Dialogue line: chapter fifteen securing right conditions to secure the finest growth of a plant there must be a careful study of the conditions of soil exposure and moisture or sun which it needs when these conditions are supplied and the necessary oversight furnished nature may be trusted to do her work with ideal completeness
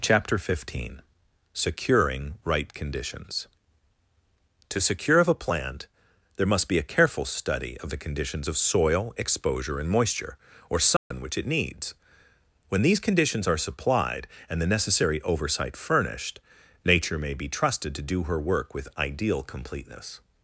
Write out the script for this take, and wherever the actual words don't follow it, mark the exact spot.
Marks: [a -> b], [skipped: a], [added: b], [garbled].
chapter fifteen securing right conditions to secure [skipped: the finest growth] of a plant there must be a careful study of the conditions of soil exposure and moisture or sun which it needs when these conditions are supplied and the necessary oversight furnished nature may be trusted to do her work with ideal completeness